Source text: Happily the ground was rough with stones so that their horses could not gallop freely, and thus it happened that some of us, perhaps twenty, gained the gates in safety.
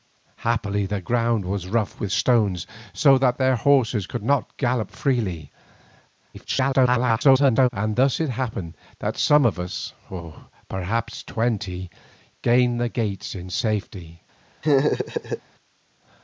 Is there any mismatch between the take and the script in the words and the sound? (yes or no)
yes